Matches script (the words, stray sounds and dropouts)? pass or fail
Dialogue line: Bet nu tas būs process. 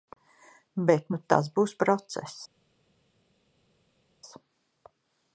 pass